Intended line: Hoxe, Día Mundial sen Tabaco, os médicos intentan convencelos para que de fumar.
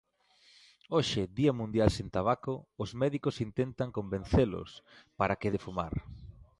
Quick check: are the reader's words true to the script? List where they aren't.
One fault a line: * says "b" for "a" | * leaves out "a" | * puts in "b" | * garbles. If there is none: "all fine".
all fine